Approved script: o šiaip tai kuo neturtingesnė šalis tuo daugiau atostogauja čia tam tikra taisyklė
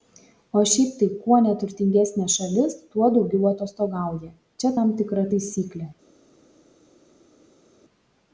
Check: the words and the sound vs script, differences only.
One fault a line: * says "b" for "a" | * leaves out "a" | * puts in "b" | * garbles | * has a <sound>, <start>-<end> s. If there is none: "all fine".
all fine